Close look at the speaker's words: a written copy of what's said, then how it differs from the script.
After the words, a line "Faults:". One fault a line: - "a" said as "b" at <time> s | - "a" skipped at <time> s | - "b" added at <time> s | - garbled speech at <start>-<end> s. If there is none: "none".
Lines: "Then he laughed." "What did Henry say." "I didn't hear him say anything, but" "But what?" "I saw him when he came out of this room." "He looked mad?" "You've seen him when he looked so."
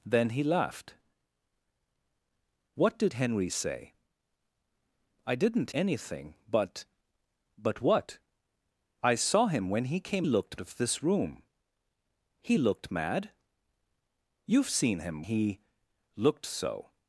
"Then he laughed." "What did Henry say." "I didn't anything, but" "But what?" "I saw him when he came looked of this room." "He looked mad?" "You've seen him he looked so."
Faults:
- "hear him say" skipped at 5.7 s
- "out" said as "looked" at 10.2 s
- "when" skipped at 15.3 s